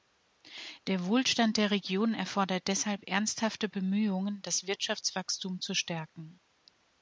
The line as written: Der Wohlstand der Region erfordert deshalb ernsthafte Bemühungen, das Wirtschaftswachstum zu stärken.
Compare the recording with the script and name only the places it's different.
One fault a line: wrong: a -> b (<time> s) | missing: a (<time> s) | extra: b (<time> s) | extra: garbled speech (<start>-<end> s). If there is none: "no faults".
no faults